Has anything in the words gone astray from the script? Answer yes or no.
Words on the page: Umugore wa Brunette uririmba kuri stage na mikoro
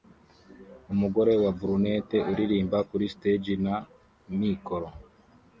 no